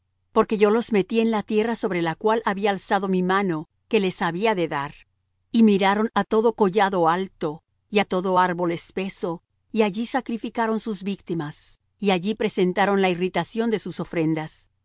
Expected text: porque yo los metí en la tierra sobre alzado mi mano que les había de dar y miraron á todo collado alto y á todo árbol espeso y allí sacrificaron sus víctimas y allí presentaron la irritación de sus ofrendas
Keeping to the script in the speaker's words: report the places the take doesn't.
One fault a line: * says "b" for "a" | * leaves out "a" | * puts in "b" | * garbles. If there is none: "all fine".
* puts in "la cual había"